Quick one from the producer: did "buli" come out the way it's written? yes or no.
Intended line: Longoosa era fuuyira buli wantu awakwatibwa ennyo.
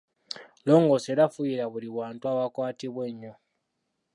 yes